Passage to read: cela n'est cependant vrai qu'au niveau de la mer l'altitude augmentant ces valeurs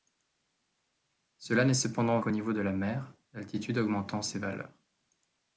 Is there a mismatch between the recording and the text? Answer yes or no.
yes